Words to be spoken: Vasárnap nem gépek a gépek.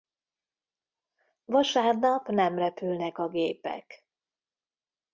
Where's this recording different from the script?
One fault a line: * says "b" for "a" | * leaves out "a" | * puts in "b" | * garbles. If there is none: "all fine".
* says "repülnek" for "gépek"